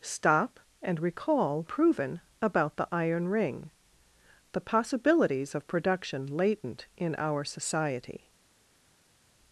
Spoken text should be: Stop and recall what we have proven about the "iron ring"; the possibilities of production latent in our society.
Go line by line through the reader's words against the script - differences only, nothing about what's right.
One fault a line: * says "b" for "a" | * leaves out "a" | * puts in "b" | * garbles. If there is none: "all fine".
* leaves out "what we have"